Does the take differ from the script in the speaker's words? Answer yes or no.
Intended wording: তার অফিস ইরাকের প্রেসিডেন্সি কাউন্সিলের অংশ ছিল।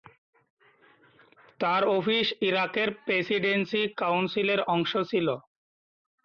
no